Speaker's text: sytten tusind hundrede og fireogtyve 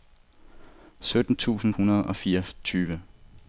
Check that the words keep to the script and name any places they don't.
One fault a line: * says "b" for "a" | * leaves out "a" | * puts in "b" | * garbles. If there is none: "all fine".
all fine